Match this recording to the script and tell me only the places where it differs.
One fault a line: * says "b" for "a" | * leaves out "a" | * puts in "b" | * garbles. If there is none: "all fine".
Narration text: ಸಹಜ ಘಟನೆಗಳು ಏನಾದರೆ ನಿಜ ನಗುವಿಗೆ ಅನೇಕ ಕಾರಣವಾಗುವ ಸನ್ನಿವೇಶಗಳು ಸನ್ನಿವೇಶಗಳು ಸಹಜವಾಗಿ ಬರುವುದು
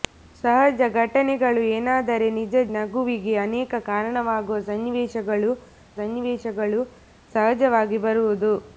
all fine